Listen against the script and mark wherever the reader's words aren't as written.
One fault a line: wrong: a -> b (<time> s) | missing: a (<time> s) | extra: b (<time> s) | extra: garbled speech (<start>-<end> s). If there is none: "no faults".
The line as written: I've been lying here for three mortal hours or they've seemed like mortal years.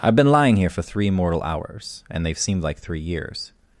wrong: or -> and (2.1 s)
wrong: mortal -> three (2.8 s)